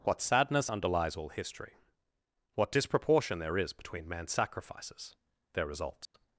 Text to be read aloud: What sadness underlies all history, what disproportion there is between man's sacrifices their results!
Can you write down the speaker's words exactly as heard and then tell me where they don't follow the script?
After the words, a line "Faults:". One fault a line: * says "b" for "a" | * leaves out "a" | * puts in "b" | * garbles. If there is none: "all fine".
What sadness underlies all history, what disproportion there is between man's sacrifices their results!
Faults:
all fine